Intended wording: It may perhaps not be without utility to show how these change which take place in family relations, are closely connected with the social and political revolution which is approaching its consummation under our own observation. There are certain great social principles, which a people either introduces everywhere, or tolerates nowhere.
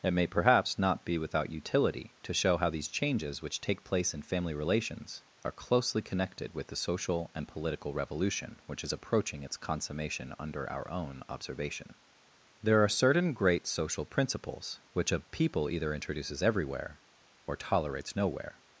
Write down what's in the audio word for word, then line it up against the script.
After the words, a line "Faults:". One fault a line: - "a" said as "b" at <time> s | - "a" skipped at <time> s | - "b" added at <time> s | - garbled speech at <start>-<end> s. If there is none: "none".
It may perhaps not be without utility to show how these changes which take place in family relations, are closely connected with the social and political revolution which is approaching its consummation under our own observation. There are certain great social principles, which a people either introduces everywhere, or tolerates nowhere.
Faults:
- "change" said as "changes" at 2.9 s